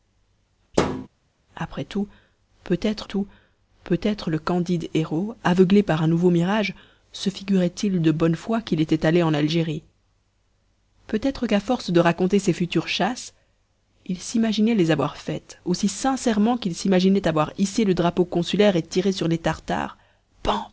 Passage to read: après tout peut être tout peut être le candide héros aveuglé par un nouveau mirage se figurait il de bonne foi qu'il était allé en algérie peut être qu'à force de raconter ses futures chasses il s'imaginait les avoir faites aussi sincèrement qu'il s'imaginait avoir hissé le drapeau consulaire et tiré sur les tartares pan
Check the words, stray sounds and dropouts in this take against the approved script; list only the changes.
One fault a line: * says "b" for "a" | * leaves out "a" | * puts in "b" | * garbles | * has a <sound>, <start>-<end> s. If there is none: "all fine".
* has a thud, 0.7-1.1 s